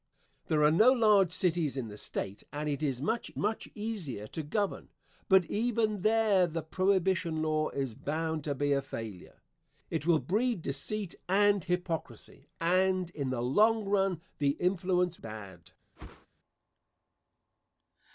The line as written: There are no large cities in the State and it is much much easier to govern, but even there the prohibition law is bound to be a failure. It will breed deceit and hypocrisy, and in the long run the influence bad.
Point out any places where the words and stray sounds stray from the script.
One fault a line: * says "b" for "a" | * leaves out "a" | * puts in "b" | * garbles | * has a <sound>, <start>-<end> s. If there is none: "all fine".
* has a whoosh, 16.0-16.3 s